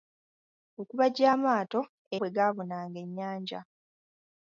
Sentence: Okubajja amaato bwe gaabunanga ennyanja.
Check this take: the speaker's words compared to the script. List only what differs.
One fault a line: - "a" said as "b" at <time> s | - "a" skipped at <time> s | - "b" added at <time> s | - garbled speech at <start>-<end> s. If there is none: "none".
none